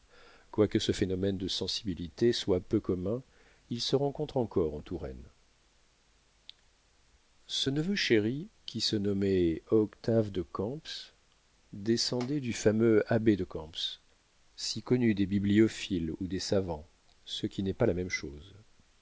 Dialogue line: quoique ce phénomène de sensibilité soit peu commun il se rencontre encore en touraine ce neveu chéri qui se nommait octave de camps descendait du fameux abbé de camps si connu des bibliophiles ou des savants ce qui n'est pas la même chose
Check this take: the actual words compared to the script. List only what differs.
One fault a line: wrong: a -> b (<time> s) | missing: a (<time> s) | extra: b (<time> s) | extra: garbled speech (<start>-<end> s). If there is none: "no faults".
no faults